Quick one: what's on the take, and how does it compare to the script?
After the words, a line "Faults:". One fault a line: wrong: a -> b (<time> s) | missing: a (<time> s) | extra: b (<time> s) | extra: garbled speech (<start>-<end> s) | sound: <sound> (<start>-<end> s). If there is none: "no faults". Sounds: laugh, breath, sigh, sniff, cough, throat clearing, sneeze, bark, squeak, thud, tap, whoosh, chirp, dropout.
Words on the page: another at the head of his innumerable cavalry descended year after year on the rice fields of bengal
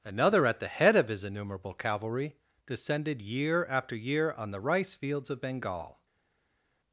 another at the head of his innumerable cavalry descended year after year on the rice fields of bengal
Faults:
no faults